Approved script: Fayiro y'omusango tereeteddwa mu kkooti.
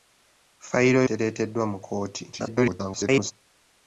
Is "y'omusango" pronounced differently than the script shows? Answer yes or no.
yes